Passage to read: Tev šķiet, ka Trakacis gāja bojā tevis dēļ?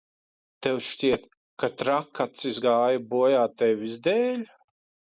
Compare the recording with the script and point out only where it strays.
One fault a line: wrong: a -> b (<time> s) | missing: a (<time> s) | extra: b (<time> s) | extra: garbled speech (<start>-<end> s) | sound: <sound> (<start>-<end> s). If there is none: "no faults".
no faults